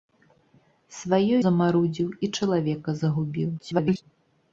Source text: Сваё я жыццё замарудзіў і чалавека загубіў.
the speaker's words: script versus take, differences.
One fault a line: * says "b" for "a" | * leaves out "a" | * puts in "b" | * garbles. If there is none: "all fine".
* leaves out "я жыццё"
* garbles